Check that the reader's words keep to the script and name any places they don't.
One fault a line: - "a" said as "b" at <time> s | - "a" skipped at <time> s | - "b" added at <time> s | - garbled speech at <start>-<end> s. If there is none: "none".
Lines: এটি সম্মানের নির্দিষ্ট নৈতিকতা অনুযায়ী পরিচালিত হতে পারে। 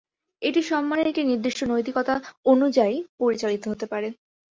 - "একটি" added at 1.1 s